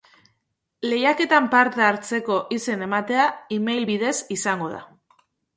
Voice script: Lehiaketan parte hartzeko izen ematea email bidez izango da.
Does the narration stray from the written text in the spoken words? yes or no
no